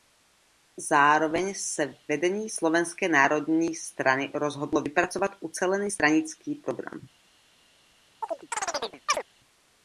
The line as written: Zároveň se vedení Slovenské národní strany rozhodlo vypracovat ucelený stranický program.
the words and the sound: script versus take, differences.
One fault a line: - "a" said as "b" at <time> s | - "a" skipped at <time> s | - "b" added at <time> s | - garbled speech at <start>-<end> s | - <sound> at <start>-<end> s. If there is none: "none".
- chirp at 8.2-9.2 s